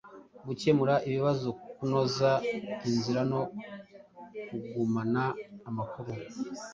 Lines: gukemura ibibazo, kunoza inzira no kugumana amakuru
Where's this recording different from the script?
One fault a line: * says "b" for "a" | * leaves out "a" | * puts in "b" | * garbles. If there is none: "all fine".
all fine